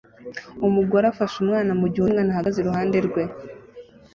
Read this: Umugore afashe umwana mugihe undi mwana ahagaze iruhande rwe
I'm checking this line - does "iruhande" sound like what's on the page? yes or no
yes